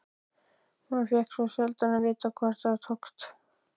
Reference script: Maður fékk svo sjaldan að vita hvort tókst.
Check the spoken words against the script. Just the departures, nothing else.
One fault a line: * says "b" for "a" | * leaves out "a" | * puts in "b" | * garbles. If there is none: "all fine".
* puts in "það"